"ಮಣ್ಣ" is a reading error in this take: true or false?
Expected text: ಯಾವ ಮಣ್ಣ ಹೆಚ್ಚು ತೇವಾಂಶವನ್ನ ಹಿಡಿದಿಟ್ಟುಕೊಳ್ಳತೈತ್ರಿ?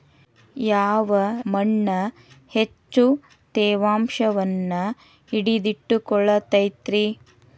false